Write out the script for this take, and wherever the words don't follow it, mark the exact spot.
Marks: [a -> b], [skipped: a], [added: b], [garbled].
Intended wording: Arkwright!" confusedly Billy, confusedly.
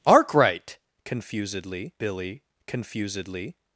Arkwright!" confusedly Billy, confusedly.